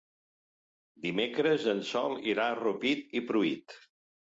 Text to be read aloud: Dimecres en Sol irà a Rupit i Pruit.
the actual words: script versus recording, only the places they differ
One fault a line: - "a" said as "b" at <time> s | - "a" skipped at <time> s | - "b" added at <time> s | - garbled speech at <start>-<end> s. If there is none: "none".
none